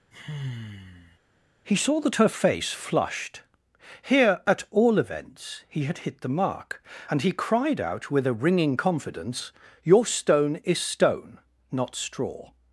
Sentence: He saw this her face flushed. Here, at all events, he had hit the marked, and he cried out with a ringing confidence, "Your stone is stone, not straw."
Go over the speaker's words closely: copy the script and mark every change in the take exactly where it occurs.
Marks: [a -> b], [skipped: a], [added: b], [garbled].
He saw [this -> that] her face flushed. Here, at all events, he had hit the [marked, -> mark] and he cried out with a ringing confidence, "Your stone is stone, not straw."